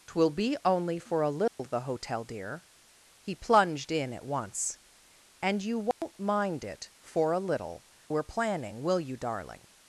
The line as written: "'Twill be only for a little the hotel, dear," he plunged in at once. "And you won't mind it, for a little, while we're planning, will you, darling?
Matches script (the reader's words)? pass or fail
fail